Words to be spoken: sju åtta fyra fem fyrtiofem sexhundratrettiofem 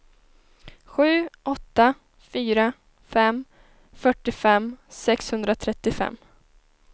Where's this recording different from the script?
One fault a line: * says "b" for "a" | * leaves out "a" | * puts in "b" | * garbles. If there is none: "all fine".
all fine